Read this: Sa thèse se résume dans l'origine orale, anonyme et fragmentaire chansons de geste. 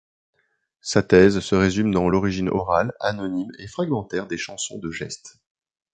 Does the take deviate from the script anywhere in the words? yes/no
yes